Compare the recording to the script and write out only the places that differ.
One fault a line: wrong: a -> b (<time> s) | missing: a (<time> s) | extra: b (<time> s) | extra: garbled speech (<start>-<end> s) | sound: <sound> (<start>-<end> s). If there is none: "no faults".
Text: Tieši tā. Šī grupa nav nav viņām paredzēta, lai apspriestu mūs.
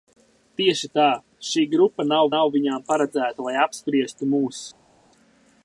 no faults